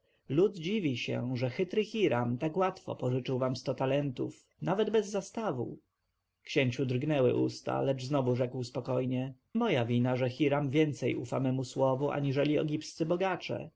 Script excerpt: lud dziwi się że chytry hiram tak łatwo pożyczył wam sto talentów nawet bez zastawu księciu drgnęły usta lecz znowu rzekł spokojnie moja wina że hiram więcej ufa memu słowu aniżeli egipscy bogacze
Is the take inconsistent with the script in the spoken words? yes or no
no